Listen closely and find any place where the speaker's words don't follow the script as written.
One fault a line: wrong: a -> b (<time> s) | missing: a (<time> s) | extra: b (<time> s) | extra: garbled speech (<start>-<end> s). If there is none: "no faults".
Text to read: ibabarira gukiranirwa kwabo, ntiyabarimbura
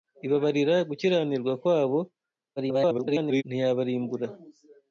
extra: garbled speech (2.6-3.4 s)